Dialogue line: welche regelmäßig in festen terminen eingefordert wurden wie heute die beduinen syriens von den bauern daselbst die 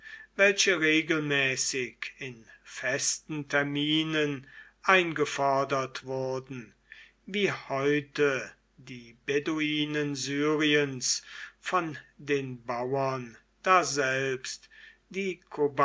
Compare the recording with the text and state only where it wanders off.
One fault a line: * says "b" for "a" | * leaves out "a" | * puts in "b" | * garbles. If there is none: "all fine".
all fine